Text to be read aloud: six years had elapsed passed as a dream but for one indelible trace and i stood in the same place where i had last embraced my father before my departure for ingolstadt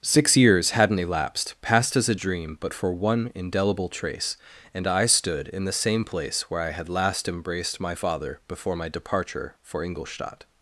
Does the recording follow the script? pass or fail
fail